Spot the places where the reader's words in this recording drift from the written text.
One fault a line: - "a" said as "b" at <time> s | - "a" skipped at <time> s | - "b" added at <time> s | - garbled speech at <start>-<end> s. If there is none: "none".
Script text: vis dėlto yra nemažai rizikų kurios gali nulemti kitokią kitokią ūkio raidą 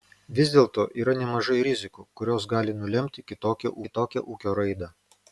none